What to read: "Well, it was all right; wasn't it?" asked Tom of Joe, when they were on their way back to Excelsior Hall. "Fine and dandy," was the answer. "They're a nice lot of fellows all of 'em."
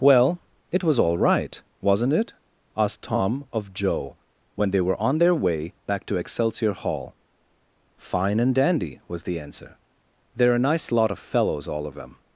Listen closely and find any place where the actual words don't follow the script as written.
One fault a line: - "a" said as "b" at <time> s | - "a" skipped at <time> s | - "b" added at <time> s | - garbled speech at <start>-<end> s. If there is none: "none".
- "em" said as "them" at 11.9 s